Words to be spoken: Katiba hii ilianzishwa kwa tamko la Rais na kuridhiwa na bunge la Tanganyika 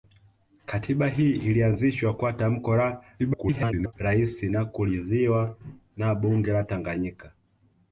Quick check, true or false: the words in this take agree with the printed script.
false